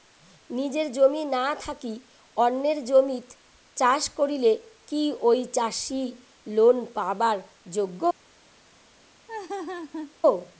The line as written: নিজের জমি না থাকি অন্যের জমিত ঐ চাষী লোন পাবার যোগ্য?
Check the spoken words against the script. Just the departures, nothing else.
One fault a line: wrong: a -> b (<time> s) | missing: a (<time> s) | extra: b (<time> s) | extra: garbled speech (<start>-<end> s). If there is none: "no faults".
extra: চাষ করিলে কি (3.8 s)